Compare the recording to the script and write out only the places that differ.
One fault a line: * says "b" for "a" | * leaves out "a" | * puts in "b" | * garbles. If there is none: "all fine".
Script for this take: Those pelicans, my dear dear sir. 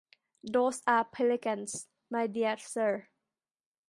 * puts in "are"
* leaves out "dear"